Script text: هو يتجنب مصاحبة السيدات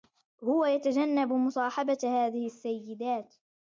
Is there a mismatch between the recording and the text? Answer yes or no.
yes